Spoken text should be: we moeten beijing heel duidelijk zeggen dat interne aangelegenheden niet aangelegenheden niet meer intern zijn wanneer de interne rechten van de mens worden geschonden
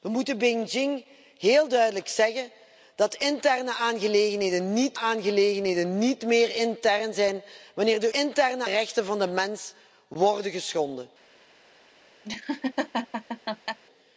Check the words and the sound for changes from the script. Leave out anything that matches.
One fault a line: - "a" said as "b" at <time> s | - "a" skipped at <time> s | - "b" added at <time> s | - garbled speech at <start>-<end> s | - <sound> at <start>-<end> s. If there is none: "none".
- laugh at 12.2-13.8 s